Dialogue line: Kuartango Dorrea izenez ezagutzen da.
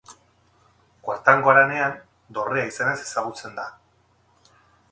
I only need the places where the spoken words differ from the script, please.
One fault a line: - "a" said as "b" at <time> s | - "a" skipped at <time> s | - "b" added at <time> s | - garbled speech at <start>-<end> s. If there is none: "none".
- "Haranean" added at 1.5 s